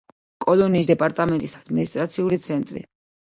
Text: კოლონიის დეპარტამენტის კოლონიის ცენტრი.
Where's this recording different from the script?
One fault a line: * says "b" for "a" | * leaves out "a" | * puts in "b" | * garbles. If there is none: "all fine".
* says "ადმინისტრაციული" for "კოლონიის"